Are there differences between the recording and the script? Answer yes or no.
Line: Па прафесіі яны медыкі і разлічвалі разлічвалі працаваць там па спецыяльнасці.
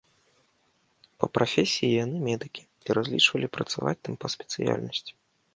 yes